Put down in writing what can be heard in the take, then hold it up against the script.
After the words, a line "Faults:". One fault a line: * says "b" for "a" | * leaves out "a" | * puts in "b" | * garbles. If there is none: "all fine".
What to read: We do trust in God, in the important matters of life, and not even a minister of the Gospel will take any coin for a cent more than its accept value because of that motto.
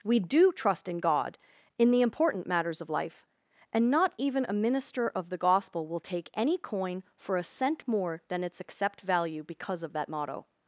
We do trust in God, in the important matters of life, and not even a minister of the Gospel will take any coin for a cent more than its accept value because of that motto.
Faults:
all fine